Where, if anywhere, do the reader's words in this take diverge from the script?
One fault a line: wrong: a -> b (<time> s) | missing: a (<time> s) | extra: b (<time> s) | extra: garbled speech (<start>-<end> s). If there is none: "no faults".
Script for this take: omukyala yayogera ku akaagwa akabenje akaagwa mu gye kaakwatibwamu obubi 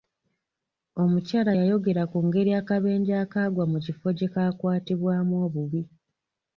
wrong: akaagwa -> ngeri (2.2 s)
extra: kifo (3.8 s)